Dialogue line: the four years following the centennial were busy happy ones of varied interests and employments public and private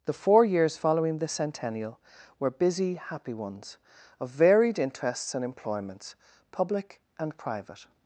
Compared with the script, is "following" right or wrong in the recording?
right